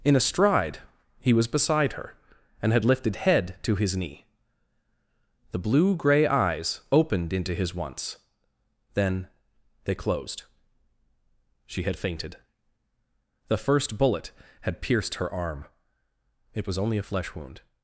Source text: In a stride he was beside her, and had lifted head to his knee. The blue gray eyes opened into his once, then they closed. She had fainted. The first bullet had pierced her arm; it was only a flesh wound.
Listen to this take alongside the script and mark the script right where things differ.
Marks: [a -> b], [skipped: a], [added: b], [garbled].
In a stride he was beside her, and had lifted head to his knee. The blue gray eyes opened into his once, then they closed. She had fainted. The first bullet had pierced her arm; it was only a flesh wound.